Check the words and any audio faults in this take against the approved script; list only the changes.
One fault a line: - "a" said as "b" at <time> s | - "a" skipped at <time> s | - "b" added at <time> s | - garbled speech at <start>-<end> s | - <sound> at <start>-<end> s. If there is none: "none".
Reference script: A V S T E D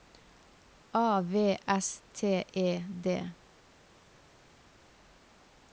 none